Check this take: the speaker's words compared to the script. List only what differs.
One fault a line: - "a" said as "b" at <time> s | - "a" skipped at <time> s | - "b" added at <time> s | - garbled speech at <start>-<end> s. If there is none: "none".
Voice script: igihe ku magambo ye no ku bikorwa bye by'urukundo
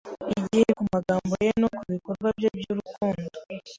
none